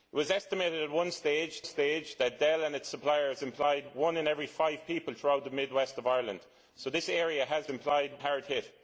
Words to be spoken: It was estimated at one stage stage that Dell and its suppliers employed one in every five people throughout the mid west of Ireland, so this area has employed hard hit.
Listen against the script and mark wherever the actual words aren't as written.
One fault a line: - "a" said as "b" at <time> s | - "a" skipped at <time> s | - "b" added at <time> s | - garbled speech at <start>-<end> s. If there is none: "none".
none